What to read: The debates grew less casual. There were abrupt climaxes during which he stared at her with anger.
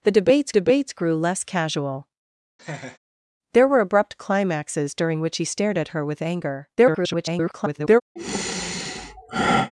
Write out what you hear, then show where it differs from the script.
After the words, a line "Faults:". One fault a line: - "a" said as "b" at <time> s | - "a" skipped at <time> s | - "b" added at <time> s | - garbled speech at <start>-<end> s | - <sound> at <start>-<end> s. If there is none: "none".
The debates debates grew less casual. There were abrupt climaxes during which he stared at her with anger. [garbled]
Faults:
- "debates" added at 0.5 s
- laugh at 2.6-3.0 s
- garbled speech at 6.8-8.0 s
- sigh at 8.2-9.7 s